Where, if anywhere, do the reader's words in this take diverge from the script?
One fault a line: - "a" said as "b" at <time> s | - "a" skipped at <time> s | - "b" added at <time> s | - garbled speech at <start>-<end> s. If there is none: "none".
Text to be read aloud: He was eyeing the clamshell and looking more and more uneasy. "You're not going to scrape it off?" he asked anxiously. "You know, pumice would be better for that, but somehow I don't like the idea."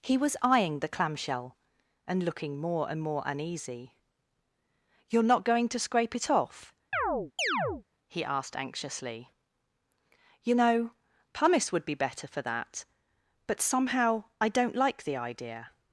none